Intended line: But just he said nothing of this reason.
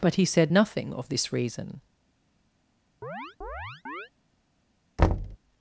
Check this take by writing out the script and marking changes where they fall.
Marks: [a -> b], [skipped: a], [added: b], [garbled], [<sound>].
But [skipped: just] he said nothing of this reason. [chirp] [thud]